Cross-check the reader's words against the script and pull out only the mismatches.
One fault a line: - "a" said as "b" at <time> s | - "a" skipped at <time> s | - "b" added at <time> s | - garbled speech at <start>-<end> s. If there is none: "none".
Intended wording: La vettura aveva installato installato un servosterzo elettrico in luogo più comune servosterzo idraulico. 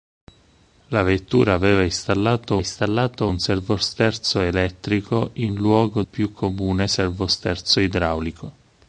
none